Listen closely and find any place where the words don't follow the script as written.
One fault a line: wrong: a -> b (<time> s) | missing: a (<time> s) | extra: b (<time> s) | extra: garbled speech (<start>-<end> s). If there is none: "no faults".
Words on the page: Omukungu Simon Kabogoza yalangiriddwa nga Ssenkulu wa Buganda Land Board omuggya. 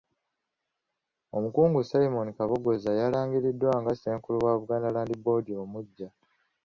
no faults